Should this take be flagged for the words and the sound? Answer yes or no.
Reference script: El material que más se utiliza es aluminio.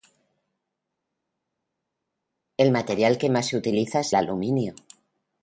no